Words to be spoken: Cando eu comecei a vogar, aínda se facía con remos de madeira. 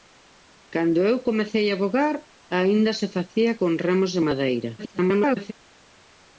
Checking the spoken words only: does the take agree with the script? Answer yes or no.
no